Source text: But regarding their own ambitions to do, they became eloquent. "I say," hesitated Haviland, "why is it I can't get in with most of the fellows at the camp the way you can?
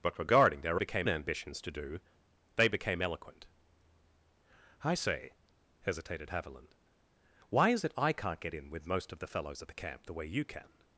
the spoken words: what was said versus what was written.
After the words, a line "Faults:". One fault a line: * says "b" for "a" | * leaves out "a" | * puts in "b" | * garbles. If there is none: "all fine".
But regarding their became ambitions to do, they became eloquent. "I say," hesitated Haviland, "why is it I can't get in with most of the fellows at the camp the way you can?
Faults:
* says "became" for "own"